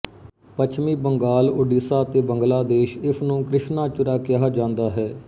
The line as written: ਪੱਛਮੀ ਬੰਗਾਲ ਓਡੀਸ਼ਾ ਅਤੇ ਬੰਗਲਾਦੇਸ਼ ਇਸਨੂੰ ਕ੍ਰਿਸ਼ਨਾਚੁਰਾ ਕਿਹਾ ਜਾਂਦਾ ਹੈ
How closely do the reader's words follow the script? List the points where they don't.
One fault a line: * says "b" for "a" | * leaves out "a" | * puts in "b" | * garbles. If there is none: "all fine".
all fine